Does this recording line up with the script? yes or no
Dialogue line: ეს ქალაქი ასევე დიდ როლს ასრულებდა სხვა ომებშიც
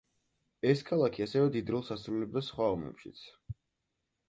yes